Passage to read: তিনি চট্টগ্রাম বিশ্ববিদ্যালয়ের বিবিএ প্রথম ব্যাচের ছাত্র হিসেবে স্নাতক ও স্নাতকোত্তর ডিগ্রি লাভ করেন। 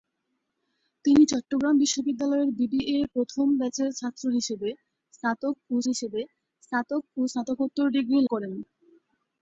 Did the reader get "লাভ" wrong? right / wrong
wrong